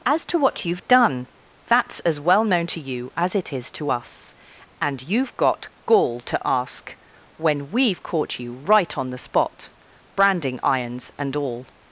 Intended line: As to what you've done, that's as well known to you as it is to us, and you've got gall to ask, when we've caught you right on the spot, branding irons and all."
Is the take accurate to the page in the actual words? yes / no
yes